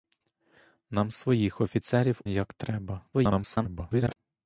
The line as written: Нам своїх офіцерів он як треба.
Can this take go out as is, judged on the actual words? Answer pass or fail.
fail